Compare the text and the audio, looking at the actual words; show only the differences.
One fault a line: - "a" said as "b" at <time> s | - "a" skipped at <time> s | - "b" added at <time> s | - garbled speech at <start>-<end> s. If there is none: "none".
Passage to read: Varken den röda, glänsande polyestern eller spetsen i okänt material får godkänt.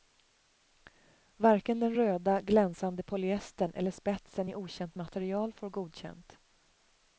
none